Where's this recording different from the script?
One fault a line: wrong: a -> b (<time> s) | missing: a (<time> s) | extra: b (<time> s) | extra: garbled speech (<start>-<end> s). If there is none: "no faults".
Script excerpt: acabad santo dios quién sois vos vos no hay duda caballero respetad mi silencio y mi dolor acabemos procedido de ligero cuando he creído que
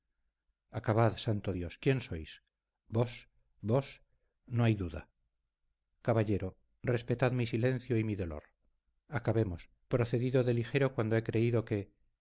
no faults